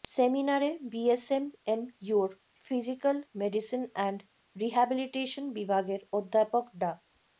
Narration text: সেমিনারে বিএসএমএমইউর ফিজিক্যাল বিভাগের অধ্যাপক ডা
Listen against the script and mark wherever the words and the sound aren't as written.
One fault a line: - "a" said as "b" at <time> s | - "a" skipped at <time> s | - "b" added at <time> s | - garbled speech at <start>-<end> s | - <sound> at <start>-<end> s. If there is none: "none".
- "মেডিসিন অ্যান্ড রিহ্যাবিলিটেশন" added at 3.4 s